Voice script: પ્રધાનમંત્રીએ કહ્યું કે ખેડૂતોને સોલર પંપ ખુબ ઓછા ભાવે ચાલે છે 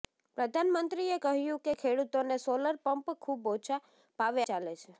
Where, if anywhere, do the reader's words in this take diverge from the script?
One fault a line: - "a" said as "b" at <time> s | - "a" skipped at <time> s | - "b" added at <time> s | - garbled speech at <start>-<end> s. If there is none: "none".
none